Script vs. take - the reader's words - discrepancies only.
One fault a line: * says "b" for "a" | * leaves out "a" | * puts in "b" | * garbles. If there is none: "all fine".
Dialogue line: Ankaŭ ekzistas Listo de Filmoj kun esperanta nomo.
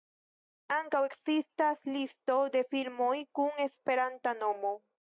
all fine